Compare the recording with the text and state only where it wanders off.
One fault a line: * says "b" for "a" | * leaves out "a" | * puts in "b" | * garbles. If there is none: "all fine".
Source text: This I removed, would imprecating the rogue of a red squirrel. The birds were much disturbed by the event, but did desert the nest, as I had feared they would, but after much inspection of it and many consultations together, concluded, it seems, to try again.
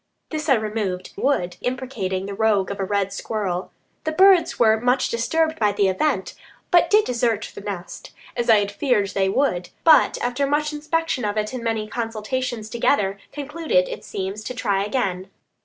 all fine